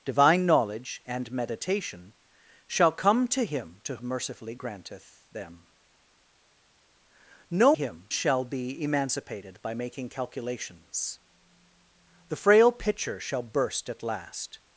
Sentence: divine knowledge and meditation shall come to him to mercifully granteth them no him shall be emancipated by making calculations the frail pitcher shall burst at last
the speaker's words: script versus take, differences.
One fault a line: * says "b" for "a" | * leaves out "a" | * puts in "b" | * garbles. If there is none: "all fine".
all fine